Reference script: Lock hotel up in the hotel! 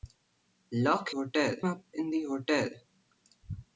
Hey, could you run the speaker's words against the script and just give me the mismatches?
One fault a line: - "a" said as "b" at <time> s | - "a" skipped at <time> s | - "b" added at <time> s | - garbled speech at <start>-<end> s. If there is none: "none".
none